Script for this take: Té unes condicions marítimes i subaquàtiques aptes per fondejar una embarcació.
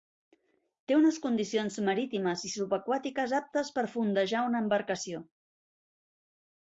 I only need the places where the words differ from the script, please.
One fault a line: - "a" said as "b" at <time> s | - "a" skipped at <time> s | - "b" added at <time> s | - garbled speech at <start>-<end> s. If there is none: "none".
none